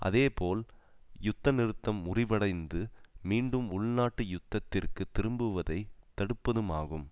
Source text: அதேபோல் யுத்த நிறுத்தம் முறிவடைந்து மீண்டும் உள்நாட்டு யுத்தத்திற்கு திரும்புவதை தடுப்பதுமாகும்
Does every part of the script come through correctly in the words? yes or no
yes